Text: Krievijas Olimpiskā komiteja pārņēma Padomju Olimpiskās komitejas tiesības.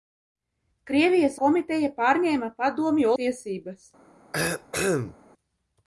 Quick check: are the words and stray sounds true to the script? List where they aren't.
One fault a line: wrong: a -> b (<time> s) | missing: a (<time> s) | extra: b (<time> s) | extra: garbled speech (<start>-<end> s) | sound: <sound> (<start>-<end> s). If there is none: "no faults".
missing: Olimpiskā (1.4 s)
missing: Olimpiskās komitejas (3.1 s)
sound: cough (4.3-5.2 s)